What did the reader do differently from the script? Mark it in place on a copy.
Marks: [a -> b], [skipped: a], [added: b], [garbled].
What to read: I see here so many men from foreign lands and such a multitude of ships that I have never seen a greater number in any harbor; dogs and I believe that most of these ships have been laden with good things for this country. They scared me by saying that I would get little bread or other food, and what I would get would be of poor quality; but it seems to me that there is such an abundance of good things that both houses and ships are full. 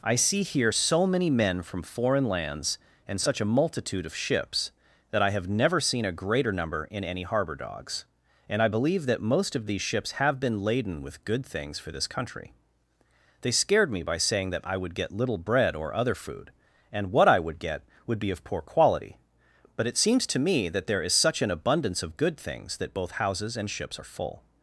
I see here so many men from foreign lands and such a multitude of ships that I have never seen a greater number in any harbor; dogs and I believe that most of these ships have been laden with good things for this country. They scared me by saying that I would get little bread or other food, and what I would get would be of poor quality; but it seems to me that there is such an abundance of good things that both houses and ships are full.